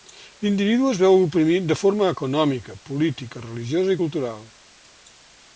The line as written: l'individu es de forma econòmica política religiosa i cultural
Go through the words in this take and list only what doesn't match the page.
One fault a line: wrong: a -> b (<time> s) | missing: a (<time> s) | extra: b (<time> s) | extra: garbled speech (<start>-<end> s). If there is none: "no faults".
extra: veu oprimit (1.0 s)